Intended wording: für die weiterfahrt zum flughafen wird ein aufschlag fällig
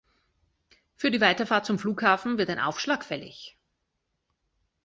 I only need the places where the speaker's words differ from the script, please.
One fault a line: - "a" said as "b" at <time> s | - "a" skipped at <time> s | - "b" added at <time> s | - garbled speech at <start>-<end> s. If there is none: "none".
none